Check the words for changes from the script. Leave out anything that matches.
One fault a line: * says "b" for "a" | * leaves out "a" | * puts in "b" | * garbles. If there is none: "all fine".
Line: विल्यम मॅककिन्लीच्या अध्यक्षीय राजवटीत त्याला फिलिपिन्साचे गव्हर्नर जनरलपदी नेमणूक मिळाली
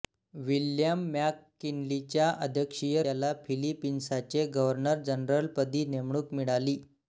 * leaves out "राजवटीत"